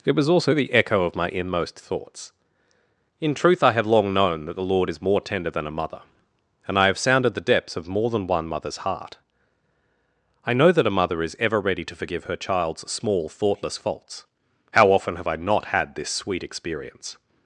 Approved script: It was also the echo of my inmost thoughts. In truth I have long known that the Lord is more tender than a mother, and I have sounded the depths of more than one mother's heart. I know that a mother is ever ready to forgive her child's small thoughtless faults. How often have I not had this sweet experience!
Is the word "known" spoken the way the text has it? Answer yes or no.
yes